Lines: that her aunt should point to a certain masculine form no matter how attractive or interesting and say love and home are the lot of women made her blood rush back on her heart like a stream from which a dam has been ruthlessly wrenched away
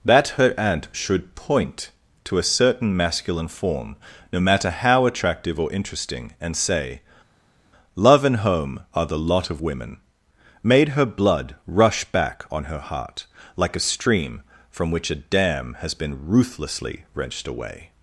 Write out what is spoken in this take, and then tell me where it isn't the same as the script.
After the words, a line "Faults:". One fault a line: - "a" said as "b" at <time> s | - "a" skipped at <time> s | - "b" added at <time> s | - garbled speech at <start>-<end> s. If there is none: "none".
that her aunt should point to a certain masculine form no matter how attractive or interesting and say love and home are the lot of women made her blood rush back on her heart like a stream from which a dam has been ruthlessly wrenched away
Faults:
none